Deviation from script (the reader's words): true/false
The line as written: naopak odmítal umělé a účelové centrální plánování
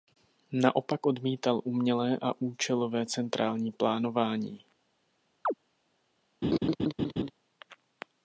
false